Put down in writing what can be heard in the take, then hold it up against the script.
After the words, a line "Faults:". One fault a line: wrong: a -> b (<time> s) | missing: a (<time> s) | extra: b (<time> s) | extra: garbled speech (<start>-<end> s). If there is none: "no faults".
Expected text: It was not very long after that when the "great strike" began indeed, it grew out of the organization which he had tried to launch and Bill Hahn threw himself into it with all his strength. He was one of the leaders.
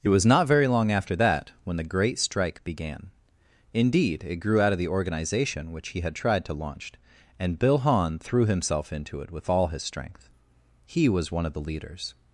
It was not very long after that when the "great strike" began indeed, it grew out of the organization which he had tried to launch and Bill Hahn threw himself into it with all his strength. He was one of the leaders.
Faults:
no faults